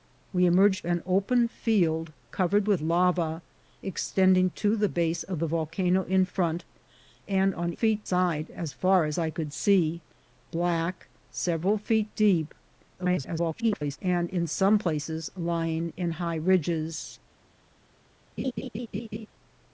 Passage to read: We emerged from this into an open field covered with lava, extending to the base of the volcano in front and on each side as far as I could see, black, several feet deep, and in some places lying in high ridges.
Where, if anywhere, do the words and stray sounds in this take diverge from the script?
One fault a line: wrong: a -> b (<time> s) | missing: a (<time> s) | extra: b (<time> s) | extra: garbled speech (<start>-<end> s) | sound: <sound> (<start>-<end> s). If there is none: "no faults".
missing: from this into (0.9 s)
wrong: each -> feet (7.7 s)
extra: garbled speech (13.0-14.0 s)
sound: laugh (18.4-19.3 s)